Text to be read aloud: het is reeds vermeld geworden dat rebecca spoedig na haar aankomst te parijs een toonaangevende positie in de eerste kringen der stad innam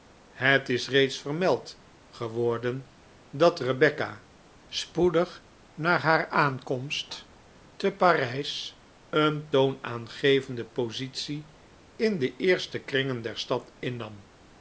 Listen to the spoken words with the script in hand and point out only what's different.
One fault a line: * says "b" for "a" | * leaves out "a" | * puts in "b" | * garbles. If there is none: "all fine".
all fine